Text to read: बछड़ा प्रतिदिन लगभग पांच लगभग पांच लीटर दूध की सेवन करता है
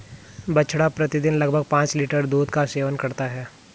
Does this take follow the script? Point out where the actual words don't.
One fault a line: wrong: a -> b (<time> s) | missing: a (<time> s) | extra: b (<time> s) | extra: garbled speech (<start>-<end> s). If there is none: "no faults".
missing: लगभग पांच (1.9 s)
wrong: की -> का (2.5 s)